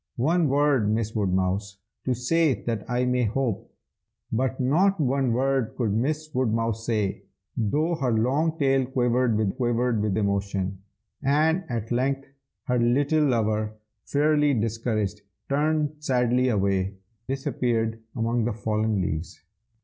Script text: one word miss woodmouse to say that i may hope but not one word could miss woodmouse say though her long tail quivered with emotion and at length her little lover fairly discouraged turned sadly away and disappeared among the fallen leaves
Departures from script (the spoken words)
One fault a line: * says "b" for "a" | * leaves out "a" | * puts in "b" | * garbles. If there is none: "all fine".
* puts in "quivered with"
* leaves out "and"